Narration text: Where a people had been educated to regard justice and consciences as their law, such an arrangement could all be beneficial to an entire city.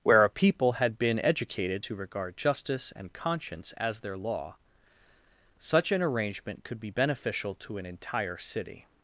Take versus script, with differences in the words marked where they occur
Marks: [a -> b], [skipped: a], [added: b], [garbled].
Where a people had been educated to regard justice and [consciences -> conscience] as their law, such an arrangement could [skipped: all] be beneficial to an entire city.